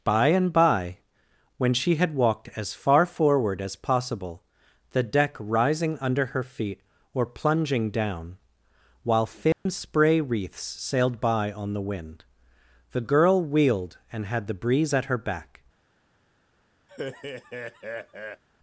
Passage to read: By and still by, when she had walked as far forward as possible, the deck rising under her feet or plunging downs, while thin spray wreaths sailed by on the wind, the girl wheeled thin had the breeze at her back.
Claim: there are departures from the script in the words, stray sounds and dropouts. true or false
true